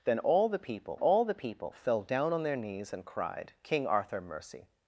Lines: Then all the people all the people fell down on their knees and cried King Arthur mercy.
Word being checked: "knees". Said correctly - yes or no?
yes